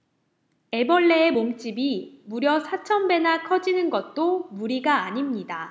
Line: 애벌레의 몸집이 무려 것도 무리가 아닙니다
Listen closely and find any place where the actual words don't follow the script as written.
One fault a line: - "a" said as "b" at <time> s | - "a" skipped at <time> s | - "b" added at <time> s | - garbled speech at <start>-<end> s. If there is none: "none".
- "사천 배나 커지는" added at 2.6 s